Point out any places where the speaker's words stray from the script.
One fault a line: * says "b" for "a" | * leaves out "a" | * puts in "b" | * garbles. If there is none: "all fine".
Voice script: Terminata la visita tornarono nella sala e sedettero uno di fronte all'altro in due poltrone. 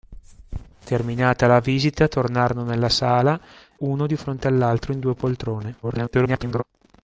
* leaves out "e sedettero"
* garbles